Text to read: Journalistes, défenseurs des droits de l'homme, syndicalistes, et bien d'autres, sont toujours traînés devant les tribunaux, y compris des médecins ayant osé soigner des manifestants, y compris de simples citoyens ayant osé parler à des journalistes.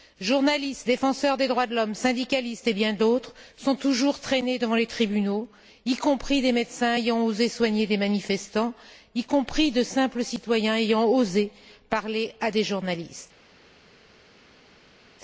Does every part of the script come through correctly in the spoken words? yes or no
yes